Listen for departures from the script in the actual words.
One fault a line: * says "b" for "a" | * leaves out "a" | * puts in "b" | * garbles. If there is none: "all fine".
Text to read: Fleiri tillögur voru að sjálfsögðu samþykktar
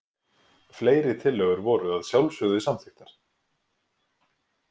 all fine